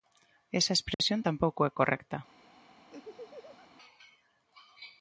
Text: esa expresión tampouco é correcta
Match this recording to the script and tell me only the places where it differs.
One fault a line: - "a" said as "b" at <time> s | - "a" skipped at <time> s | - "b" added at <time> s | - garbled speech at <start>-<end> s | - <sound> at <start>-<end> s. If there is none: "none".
- dropout at 0.9-1.0 s
- laugh at 2.9-3.7 s